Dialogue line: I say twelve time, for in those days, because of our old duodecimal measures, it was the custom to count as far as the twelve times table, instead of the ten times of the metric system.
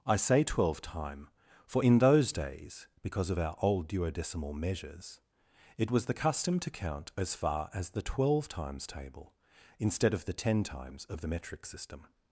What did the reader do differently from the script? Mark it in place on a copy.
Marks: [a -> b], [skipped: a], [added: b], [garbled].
I say twelve time, for in those days, because of our old duodecimal measures, it was the custom to count as far as the twelve times table, instead of the ten times of the metric system.